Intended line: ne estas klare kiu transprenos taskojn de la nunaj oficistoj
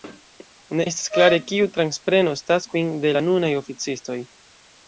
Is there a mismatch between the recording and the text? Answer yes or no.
no